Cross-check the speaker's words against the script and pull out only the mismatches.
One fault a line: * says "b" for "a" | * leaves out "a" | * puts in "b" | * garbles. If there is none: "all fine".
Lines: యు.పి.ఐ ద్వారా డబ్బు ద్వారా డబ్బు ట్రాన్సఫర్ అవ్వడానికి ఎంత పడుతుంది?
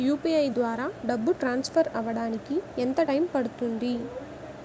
* leaves out "ద్వారా డబ్బు"
* puts in "టైం"